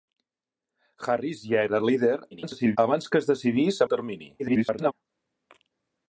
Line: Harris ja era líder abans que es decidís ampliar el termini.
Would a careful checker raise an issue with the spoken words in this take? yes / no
yes